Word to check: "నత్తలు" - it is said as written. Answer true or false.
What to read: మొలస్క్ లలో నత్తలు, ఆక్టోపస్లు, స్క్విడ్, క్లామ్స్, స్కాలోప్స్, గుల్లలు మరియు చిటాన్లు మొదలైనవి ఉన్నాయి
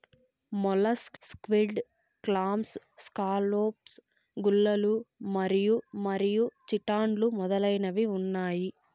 false